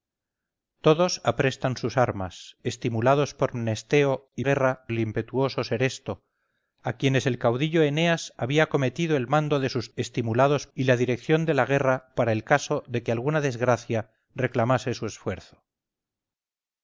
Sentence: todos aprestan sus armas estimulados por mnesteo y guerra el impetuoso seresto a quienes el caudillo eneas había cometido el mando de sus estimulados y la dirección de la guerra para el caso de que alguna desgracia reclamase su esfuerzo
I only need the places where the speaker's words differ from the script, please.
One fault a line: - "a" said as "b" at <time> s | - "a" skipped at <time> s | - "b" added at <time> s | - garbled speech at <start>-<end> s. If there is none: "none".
none